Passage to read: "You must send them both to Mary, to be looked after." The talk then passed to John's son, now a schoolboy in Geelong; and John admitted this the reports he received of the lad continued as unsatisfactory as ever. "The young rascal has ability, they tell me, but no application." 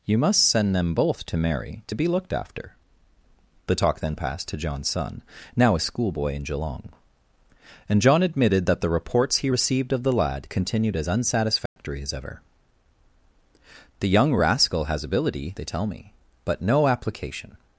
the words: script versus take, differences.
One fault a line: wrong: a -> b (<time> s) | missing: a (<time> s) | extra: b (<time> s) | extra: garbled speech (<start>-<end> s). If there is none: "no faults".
wrong: this -> that (8.7 s)